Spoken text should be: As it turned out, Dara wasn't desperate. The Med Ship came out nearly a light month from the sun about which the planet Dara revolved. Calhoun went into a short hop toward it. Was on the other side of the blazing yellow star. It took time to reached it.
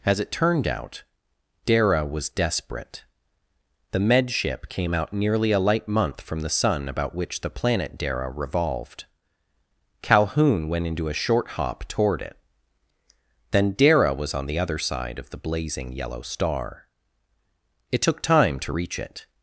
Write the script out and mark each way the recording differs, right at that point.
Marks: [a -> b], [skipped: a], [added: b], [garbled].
As it turned out, Dara [wasn't -> was] desperate. The Med Ship came out nearly a light month from the sun about which the planet Dara revolved. Calhoun went into a short hop toward it. [added: Then Dara] Was on the other side of the blazing yellow star. It took time to [reached -> reach] it.